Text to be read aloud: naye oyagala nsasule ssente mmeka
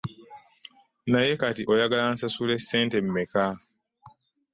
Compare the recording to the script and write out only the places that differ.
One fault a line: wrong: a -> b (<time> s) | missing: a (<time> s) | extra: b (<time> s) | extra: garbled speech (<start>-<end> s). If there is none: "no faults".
extra: kati (1.4 s)